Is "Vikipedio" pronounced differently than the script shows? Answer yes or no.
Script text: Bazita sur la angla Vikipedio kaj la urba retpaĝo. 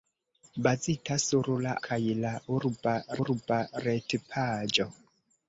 yes